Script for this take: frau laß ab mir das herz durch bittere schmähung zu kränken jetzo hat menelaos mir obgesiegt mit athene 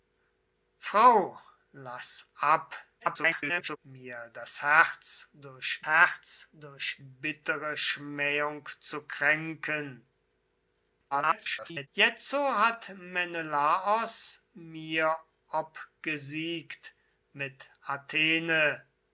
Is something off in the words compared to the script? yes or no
yes